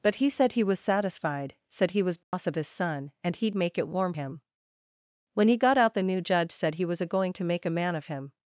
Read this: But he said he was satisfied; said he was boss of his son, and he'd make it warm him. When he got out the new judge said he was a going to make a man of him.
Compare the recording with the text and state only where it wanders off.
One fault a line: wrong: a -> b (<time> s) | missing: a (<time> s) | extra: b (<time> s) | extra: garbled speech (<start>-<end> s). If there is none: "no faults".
no faults